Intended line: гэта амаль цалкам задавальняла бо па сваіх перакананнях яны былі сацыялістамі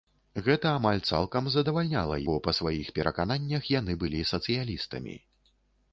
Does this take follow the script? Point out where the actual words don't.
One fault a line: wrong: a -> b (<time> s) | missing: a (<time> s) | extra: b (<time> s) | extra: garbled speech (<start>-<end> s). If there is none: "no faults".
no faults